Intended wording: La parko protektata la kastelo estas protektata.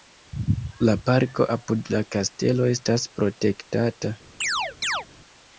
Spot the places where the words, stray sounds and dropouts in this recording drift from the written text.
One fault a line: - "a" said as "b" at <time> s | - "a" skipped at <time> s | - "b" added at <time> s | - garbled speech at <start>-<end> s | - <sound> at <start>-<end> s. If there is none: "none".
- "protektata" said as "apud" at 1.5 s
- chirp at 4.4-5.1 s